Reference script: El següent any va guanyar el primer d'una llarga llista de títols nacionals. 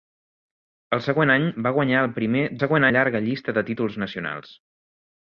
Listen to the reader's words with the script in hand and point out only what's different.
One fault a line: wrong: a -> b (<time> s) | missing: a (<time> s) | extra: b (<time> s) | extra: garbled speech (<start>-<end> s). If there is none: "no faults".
wrong: d'una -> següent (2.6 s)